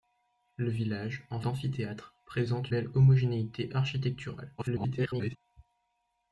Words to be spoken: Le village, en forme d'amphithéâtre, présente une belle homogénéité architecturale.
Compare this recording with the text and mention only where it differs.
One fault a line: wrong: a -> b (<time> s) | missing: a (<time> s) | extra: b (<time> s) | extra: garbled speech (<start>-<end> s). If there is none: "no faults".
missing: forme (1.4 s)
missing: une (2.7 s)
extra: garbled speech (4.6-5.4 s)